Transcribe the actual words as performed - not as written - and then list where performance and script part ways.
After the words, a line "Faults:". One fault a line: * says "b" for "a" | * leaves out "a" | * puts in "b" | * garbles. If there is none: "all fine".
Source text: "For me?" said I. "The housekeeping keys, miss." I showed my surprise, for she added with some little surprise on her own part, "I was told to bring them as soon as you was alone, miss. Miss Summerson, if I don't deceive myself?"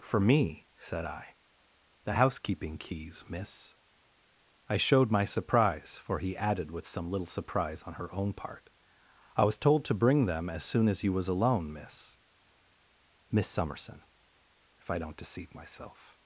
"For me?" said I. "The housekeeping keys, miss." I showed my surprise, for he added with some little surprise on her own part, "I was told to bring them as soon as you was alone, miss. Miss Summerson, if I don't deceive myself?"
Faults:
* says "he" for "she"